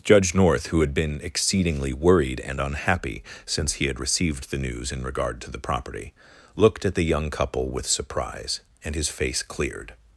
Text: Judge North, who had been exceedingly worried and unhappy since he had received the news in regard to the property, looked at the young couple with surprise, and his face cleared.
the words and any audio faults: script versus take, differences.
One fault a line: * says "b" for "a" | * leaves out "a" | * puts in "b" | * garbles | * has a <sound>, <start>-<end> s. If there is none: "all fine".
all fine